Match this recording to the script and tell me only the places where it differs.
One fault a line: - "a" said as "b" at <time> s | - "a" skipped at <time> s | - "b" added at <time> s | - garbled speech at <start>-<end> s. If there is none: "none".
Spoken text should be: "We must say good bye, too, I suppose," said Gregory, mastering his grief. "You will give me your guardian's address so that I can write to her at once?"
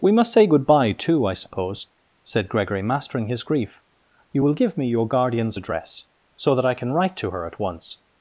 none